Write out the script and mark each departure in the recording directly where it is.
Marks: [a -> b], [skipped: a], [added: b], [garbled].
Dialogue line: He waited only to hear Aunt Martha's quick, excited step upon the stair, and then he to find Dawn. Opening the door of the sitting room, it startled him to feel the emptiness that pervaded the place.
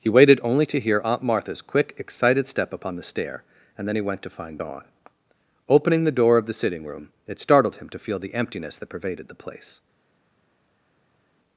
He waited only to hear Aunt Martha's quick, excited step upon the stair, and then he [added: went] to find Dawn. Opening the door of the sitting room, it startled him to feel the emptiness that pervaded the place.